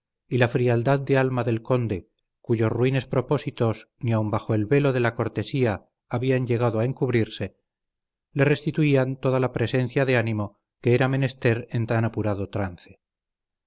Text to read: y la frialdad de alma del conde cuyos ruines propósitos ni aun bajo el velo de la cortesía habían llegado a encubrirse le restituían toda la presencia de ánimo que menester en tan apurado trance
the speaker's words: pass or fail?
fail